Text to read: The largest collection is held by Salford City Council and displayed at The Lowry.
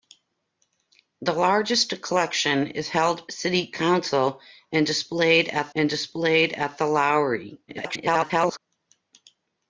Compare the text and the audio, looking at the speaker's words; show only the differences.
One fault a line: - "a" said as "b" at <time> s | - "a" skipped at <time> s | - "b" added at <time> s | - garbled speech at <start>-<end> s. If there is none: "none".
- "by Salford City Council" said as "City Council and displayed at" at 3.3 s
- garbled speech at 7.7-8.6 s